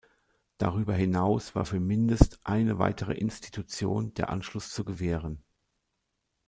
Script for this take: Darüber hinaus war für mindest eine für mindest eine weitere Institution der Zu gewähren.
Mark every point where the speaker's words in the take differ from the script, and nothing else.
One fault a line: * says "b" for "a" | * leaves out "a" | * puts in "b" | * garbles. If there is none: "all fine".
* leaves out "für mindest eine"
* puts in "Anschluss"